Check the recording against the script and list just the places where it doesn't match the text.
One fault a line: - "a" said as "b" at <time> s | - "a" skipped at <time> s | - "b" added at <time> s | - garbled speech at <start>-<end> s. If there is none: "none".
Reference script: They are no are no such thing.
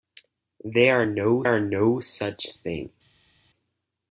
none